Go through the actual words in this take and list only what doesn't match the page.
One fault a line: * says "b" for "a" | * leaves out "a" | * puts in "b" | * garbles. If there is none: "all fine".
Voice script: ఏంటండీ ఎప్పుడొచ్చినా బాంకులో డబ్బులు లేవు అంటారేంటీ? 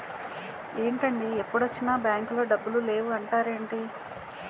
all fine